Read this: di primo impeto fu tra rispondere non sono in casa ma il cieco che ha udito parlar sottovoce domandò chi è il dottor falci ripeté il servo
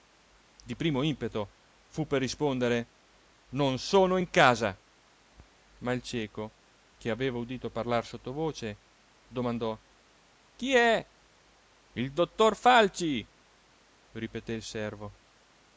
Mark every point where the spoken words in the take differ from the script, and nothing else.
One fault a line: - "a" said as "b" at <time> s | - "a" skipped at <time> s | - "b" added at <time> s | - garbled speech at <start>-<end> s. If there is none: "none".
- "tra" said as "per" at 2.1 s
- "ha" said as "aveva" at 7.1 s